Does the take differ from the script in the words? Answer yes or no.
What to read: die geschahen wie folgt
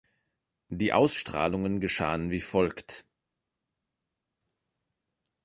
yes